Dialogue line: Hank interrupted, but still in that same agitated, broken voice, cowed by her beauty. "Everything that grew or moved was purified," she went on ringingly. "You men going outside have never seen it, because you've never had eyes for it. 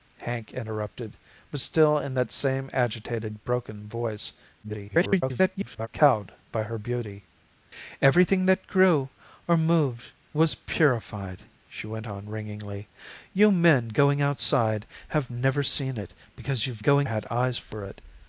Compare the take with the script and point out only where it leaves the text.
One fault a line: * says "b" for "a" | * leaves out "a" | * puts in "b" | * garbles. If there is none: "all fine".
* garbles
* says "going" for "never"